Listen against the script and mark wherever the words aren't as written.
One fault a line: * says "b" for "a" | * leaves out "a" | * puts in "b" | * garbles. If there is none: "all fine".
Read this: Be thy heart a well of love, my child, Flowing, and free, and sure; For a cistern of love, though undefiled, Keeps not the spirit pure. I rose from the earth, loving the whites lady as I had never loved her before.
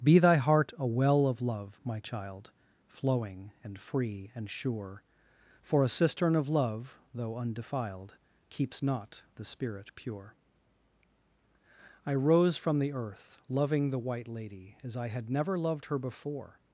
* says "white" for "whites"